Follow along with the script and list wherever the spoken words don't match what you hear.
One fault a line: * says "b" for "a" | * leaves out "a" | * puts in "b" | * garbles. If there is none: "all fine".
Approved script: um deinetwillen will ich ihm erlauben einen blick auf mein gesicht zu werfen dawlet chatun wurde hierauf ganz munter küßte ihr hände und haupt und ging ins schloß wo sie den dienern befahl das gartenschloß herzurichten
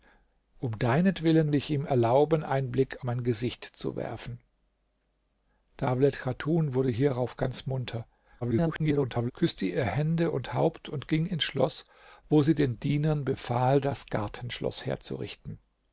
* leaves out "will"
* leaves out "auf"
* garbles